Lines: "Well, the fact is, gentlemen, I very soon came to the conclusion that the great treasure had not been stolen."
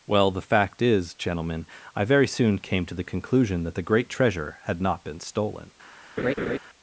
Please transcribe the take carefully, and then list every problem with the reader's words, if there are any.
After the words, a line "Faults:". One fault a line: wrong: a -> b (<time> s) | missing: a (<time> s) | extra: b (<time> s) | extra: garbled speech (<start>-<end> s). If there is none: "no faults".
"Well, the fact is, gentlemen, I very soon came to the conclusion that the great treasure had not been stolen."
Faults:
no faults